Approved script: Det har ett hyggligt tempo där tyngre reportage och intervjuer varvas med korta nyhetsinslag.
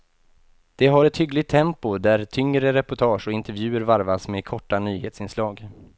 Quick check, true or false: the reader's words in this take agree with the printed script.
true